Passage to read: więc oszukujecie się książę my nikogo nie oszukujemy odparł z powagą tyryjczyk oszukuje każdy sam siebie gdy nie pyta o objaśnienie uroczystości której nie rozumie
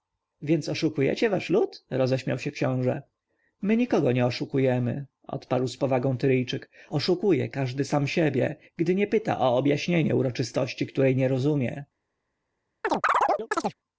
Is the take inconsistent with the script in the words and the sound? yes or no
yes